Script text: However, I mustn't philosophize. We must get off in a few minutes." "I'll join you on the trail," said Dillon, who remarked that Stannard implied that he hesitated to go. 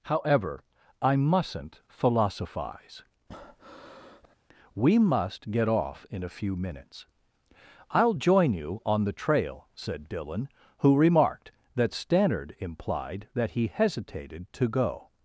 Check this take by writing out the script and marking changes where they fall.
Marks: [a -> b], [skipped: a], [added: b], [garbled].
However, I mustn't philosophize. We must get off in a few minutes." "I'll join you on the trail," said Dillon, who remarked that Stannard implied that he hesitated to go.